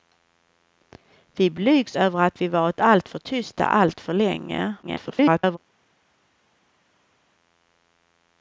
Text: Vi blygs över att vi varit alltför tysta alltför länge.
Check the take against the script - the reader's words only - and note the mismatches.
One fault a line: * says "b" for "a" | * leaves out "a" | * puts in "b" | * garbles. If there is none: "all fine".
* garbles